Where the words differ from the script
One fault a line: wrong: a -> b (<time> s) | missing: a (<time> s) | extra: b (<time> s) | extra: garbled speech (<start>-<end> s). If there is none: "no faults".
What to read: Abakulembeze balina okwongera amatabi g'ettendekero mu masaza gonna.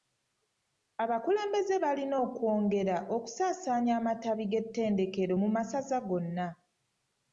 extra: okusaasaanya (3.2 s)